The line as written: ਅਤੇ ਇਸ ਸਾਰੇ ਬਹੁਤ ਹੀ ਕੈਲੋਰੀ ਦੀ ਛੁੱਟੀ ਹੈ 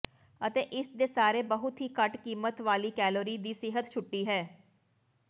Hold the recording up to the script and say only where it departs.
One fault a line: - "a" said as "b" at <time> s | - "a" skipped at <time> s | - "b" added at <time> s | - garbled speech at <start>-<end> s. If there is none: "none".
- "ਦੇ" added at 0.9 s
- "ਘੱਟ ਕੀਮਤ ਵਾਲੀ" added at 2.0 s
- "ਸਿਹਤ" added at 3.5 s